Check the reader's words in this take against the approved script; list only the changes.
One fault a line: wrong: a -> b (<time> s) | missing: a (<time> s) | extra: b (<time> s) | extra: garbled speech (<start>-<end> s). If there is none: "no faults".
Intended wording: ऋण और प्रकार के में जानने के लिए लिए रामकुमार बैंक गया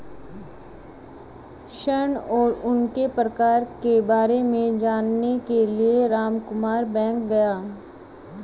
extra: उनके (2.6 s)
extra: बारे (4.0 s)
missing: लिए (6.1 s)